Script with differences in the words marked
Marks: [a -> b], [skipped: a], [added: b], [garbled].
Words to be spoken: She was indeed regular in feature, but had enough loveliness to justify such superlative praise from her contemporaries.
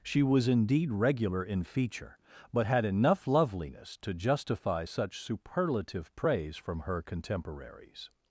She was indeed regular in feature, but had enough loveliness to justify such superlative praise from her contemporaries.